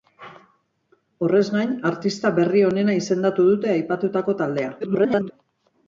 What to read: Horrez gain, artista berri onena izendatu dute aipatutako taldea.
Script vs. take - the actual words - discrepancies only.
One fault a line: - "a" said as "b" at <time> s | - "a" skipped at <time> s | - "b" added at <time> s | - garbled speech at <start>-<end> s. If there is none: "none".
- garbled speech at 4.8-5.3 s